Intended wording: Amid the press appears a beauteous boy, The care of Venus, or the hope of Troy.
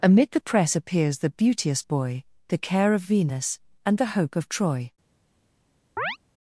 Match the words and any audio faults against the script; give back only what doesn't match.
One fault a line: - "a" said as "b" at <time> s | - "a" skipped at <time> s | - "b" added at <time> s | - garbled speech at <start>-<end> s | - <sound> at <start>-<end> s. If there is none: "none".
- "a" said as "the" at 1.2 s
- "or" said as "and" at 3.9 s
- chirp at 6.0-6.2 s